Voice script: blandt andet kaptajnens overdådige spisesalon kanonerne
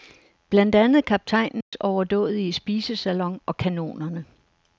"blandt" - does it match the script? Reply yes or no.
yes